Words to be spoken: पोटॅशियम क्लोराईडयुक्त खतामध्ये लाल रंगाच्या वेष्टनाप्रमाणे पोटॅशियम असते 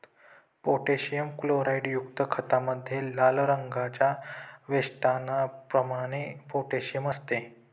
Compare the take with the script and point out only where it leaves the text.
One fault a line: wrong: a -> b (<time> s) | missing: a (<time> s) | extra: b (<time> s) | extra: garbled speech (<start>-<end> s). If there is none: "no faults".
no faults